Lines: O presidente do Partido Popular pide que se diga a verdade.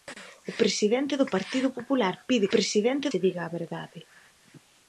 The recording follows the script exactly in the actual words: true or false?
false